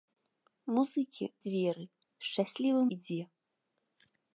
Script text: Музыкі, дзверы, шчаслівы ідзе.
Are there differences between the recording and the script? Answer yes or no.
no